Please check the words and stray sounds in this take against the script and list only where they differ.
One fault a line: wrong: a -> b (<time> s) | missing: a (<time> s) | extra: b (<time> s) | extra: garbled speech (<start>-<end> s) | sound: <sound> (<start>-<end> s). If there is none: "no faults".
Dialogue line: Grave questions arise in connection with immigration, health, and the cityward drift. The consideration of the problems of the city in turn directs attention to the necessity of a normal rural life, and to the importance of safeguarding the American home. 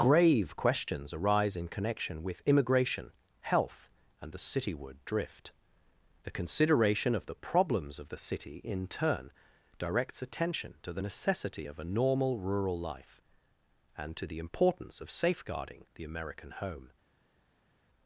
no faults